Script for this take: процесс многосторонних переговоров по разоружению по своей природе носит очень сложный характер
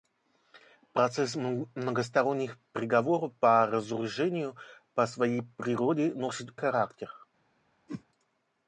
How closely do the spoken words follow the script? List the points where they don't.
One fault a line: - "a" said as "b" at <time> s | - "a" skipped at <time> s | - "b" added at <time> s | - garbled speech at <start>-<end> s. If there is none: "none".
- "очень сложный" skipped at 6.5 s